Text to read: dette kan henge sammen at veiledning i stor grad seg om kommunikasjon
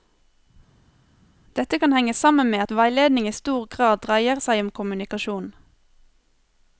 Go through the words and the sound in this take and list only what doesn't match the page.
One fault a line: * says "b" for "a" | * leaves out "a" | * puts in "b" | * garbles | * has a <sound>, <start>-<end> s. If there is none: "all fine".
* puts in "med"
* puts in "dreier"